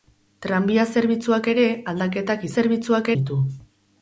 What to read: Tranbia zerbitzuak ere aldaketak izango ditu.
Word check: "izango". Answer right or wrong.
wrong